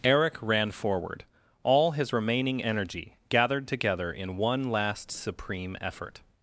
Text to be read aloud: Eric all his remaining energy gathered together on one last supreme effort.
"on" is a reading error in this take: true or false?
true